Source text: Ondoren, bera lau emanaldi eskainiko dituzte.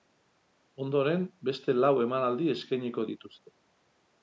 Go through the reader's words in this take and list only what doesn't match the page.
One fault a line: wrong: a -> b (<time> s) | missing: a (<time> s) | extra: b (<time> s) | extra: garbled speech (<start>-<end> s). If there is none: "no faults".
wrong: bera -> beste (1.5 s)